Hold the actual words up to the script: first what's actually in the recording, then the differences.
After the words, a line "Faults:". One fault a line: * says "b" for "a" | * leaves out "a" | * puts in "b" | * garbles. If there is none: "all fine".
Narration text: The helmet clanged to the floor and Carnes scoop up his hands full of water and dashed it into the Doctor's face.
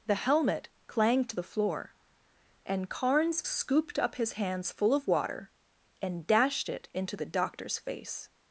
The helmet clanged to the floor and Carnes scooped up his hands full of water and dashed it into the Doctor's face.
Faults:
* says "scooped" for "scoop"